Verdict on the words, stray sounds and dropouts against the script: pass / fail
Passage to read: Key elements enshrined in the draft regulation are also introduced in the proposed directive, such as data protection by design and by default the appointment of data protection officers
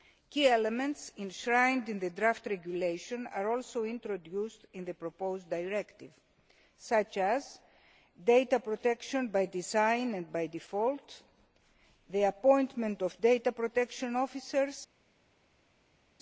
pass